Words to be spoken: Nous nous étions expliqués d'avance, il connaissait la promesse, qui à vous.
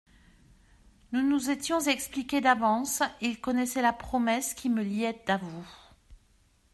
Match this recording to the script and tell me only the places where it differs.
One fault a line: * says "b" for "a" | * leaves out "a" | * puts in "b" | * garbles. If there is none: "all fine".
* puts in "me liait"